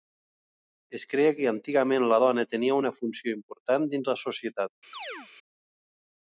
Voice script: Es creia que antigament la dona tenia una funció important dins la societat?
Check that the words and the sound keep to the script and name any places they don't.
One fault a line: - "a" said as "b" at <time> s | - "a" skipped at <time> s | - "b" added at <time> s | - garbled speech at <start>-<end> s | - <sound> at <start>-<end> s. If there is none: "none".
- chirp at 4.9-5.3 s